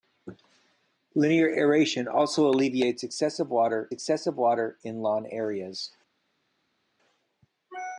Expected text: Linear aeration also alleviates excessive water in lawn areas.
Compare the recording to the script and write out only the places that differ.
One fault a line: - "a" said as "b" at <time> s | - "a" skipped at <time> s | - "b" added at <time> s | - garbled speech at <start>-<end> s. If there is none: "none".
- "excessive water" added at 3.9 s